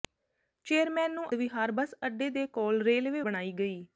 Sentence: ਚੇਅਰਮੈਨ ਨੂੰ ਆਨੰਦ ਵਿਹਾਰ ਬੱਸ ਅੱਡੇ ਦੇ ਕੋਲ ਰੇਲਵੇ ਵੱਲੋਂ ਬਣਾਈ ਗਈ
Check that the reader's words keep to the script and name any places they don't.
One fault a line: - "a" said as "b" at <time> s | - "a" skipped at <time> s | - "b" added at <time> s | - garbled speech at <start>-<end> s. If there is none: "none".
- "ਆਨੰਦ" skipped at 1.2 s
- "ਵੱਲੋਂ" skipped at 3.2 s